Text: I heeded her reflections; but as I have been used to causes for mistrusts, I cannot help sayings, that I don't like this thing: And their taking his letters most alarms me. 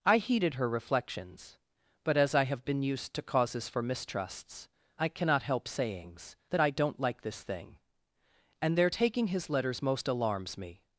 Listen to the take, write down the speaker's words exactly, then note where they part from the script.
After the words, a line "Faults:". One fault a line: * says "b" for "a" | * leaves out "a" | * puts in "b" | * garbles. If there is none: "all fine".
I heeded her reflections; but as I have been used to causes for mistrusts, I cannot help sayings, that I don't like this thing: And their taking his letters most alarms me.
Faults:
all fine